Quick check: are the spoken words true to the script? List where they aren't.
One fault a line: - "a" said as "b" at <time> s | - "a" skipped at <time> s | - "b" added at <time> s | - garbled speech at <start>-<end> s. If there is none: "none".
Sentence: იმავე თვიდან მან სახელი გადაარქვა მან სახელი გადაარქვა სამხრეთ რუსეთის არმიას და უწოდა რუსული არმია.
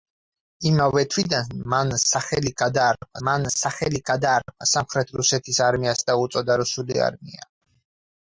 none